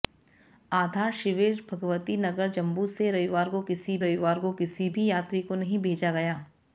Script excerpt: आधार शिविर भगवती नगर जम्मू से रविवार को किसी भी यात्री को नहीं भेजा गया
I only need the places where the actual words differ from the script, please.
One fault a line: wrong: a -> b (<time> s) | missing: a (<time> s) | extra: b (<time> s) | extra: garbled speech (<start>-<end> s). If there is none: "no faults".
extra: रविवार को किसी (4.0 s)